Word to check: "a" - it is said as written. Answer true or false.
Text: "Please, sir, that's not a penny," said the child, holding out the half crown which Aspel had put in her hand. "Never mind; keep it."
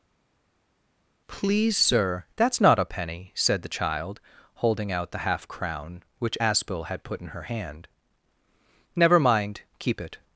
true